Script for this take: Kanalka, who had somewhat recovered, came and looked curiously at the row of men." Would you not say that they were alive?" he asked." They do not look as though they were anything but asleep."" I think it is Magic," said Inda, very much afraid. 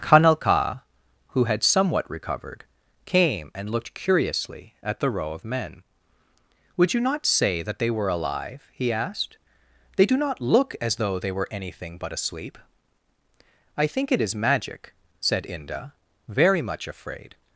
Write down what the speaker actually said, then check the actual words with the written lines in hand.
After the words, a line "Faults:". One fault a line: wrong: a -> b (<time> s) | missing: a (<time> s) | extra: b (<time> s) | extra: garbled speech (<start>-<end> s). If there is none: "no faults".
Kanalka, who had somewhat recovered, came and looked curiously at the row of men." Would you not say that they were alive?" he asked." They do not look as though they were anything but asleep."" I think it is Magic," said Inda, very much afraid.
Faults:
no faults